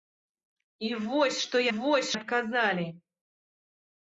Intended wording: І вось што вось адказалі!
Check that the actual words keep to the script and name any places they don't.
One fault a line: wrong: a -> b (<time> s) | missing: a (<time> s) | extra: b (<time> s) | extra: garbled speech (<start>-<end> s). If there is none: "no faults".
no faults